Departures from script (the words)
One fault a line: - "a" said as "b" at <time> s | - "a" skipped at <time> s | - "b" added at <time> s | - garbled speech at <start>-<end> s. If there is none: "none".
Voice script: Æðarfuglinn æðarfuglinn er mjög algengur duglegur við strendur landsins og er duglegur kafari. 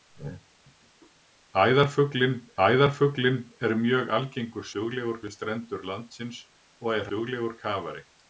none